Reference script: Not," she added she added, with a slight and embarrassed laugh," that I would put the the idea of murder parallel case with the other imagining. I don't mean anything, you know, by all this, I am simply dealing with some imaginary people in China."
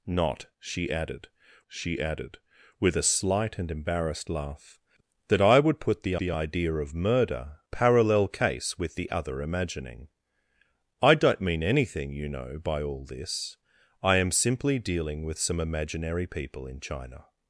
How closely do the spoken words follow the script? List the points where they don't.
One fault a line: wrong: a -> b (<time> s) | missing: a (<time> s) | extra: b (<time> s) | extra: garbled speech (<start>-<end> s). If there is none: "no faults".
no faults